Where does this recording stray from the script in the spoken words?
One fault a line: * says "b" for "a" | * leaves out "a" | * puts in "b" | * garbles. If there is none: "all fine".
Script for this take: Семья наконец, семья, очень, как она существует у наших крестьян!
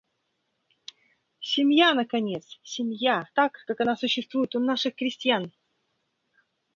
* says "так" for "очень"